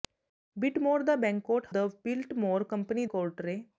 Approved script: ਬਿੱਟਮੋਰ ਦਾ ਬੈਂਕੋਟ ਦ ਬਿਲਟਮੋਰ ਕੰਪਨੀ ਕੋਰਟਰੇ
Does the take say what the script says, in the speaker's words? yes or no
yes